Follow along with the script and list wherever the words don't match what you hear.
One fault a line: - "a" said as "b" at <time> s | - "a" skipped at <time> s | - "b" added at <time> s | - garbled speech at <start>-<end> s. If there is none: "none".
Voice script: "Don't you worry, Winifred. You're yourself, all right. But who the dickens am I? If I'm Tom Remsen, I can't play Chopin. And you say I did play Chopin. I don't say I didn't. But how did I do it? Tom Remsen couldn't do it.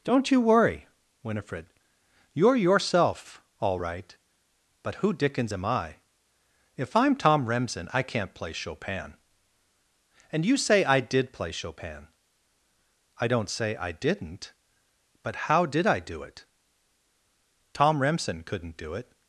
- "the" skipped at 5.1 s